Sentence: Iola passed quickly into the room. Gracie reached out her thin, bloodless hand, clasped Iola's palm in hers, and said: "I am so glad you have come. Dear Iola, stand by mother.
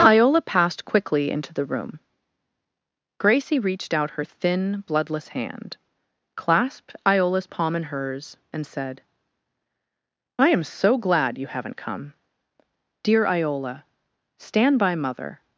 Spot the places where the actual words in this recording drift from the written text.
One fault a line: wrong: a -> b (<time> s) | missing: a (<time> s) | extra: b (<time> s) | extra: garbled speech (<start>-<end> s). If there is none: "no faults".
wrong: have -> haven't (11.5 s)